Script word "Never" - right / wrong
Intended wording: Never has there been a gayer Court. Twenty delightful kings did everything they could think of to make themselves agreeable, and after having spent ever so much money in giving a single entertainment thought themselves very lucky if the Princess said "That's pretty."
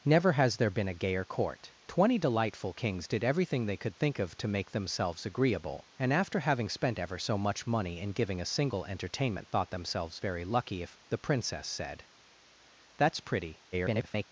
right